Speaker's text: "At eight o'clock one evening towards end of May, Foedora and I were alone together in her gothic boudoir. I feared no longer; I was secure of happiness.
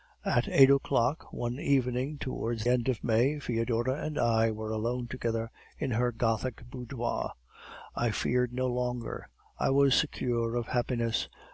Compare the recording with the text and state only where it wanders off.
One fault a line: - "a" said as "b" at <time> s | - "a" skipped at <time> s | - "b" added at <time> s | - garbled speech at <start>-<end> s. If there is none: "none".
none